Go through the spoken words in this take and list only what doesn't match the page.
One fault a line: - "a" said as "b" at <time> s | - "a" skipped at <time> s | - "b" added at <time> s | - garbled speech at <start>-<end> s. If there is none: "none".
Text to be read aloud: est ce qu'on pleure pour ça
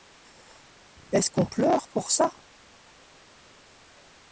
none